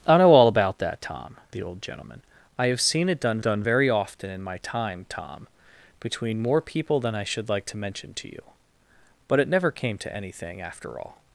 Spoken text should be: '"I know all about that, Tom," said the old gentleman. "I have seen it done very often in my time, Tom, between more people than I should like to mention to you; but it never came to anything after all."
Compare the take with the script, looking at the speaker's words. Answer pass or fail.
fail